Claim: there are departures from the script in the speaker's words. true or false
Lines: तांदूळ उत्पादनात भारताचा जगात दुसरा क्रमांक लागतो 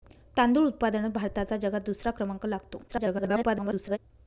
true